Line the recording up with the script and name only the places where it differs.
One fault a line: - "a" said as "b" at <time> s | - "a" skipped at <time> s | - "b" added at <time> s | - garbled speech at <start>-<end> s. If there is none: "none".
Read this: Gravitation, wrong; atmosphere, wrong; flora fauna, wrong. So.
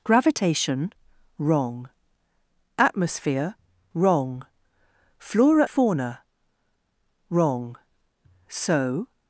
none